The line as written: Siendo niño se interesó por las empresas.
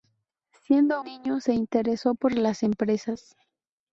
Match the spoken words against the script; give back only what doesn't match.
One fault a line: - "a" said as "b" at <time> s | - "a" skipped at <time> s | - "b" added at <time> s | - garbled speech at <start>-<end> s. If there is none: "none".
none